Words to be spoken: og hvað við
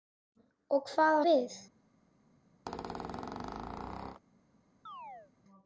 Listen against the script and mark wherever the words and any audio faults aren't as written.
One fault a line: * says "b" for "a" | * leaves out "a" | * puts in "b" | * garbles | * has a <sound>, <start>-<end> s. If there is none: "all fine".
* has a squeak, 2.7-4.2 s
* has a chirp, 4.9-5.3 s